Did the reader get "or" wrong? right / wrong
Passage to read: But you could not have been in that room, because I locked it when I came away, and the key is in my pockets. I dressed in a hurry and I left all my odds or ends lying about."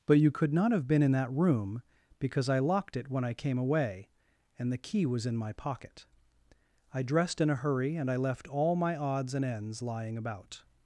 wrong